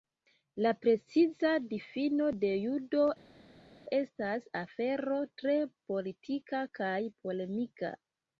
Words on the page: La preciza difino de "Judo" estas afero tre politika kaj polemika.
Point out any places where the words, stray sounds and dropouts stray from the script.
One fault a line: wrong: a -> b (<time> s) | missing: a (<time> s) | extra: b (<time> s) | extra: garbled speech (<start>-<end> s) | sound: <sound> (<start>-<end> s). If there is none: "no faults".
no faults